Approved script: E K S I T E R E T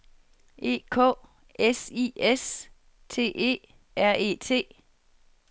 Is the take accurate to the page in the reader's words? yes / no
no